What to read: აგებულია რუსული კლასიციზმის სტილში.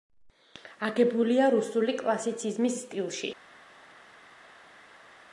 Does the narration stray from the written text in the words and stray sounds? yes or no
no